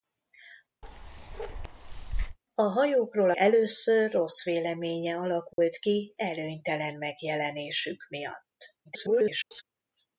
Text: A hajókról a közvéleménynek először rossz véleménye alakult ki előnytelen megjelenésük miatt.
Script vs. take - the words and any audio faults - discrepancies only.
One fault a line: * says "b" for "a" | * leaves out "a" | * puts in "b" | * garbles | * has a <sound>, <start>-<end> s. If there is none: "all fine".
* has a bark, 0.8-2.4 s
* leaves out "a közvéleménynek"
* has a dropout, 5.5-5.6 s
* garbles